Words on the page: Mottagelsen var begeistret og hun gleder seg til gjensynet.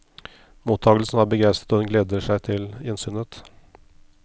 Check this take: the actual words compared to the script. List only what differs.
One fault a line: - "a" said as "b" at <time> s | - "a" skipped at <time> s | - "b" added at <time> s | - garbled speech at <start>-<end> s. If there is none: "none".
none